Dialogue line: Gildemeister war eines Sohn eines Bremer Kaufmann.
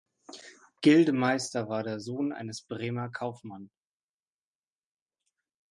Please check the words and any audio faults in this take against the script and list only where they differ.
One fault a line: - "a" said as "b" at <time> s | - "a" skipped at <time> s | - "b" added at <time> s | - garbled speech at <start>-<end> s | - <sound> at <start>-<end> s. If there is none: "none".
- "eines" said as "der" at 1.8 s